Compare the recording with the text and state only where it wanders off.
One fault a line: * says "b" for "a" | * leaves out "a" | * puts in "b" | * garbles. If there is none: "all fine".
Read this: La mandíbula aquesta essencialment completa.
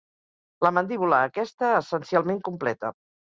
all fine